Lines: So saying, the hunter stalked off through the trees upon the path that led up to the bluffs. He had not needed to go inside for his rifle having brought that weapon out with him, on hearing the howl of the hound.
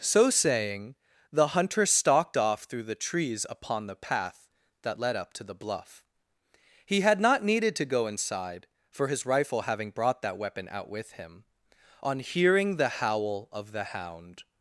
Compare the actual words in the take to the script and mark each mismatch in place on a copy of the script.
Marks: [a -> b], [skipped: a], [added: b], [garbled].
So saying, the hunter stalked off through the trees upon the path that led up to the [bluffs. -> bluff] He had not needed to go inside for his rifle having brought that weapon out with him, on hearing the howl of the hound.